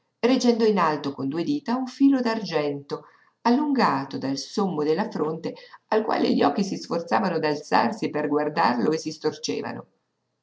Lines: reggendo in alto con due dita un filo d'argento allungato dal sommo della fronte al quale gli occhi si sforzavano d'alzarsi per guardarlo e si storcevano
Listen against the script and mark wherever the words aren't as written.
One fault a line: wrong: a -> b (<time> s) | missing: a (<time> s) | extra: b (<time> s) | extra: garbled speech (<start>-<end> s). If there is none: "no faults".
no faults